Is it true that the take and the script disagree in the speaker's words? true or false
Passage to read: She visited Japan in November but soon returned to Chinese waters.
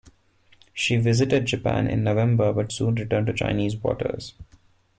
false